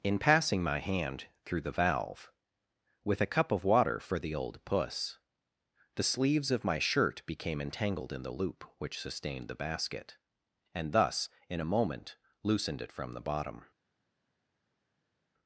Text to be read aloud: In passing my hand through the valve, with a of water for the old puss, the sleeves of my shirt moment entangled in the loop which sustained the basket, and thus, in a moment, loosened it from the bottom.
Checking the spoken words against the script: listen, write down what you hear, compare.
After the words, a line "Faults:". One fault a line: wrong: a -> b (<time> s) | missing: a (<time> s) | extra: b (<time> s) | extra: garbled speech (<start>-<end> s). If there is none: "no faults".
In passing my hand through the valve, with a cup of water for the old puss, the sleeves of my shirt became entangled in the loop which sustained the basket, and thus, in a moment, loosened it from the bottom.
Faults:
extra: cup (3.3 s)
wrong: moment -> became (7.3 s)